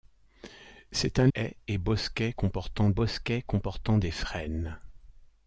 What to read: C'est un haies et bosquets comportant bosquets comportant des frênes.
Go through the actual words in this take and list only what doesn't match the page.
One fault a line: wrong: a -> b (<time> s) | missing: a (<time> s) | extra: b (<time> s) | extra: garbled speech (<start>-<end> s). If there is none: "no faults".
no faults